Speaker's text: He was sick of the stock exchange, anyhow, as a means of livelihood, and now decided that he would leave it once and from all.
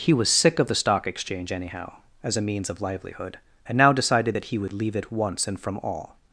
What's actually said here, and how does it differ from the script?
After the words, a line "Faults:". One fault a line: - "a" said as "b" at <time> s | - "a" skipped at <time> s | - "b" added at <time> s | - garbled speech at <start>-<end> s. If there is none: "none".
He was sick of the stock exchange, anyhow, as a means of livelihood, and now decided that he would leave it once and from all.
Faults:
none